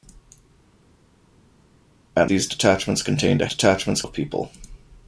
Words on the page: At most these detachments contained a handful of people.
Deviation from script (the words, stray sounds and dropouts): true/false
true